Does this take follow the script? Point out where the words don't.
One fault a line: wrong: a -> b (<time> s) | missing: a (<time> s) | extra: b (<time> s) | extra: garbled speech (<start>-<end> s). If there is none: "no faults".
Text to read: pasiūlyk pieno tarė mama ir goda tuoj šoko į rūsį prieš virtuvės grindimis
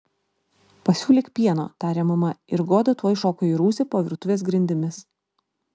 wrong: prieš -> po (3.9 s)